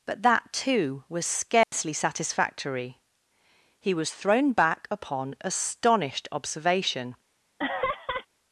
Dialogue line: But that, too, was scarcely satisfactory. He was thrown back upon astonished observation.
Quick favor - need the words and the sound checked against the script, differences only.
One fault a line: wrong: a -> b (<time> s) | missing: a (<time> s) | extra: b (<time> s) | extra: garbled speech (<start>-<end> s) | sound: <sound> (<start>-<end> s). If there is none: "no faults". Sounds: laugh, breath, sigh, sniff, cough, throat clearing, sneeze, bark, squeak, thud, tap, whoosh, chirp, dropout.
sound: dropout (1.6-1.7 s)
sound: laugh (7.6-8.3 s)